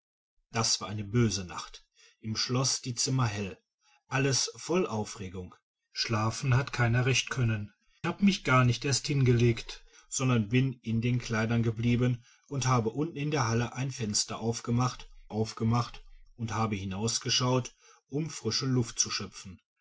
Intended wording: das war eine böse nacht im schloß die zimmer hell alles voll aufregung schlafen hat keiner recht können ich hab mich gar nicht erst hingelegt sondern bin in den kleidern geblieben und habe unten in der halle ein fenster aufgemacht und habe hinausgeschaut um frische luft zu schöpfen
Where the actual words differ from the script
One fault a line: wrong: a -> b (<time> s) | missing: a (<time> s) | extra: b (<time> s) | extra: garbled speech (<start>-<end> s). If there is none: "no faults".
missing: ich (7.7 s)
extra: aufgemacht (15.3 s)